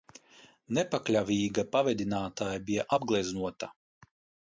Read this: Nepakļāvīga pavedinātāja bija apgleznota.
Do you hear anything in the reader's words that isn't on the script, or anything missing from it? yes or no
no